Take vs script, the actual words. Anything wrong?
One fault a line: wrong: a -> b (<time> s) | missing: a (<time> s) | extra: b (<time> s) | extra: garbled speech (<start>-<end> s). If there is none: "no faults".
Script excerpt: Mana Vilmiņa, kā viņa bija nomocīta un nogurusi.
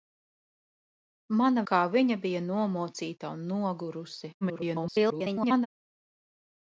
missing: Vilmiņa (1.6 s)
extra: garbled speech (4.4-5.7 s)